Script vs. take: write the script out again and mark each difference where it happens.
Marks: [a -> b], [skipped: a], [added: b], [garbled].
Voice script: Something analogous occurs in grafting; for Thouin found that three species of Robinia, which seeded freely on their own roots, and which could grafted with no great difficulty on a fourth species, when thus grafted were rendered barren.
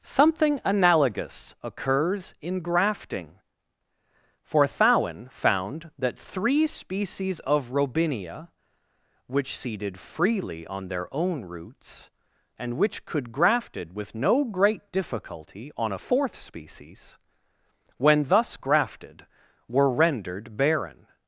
Something analogous occurs in grafting; for Thouin found that three species of Robinia, which seeded freely on their own roots, and which could grafted with no great difficulty on a fourth species, when thus grafted were rendered barren.